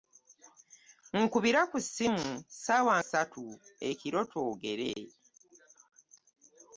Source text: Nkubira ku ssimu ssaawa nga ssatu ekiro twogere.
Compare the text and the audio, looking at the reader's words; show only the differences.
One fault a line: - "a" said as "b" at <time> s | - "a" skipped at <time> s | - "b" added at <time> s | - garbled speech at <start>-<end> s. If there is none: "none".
- "nga" skipped at 3.0 s